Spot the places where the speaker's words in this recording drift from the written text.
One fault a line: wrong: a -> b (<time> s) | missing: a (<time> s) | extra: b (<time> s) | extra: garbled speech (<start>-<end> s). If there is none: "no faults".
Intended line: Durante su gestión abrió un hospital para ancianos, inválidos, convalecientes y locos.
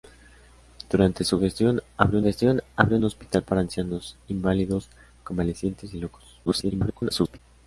extra: gestión abrió (2.2 s)
extra: garbled speech (6.5-7.4 s)